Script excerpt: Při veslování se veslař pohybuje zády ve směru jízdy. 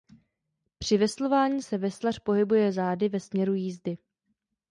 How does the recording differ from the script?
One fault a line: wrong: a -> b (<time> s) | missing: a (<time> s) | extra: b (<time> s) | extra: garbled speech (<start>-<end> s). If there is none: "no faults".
no faults